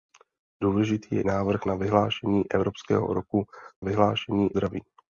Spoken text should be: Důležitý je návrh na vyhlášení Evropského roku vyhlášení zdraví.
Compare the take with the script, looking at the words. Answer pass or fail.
pass